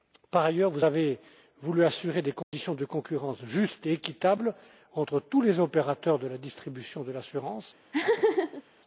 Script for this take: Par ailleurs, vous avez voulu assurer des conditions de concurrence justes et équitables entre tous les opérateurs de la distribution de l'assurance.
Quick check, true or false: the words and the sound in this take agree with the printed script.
false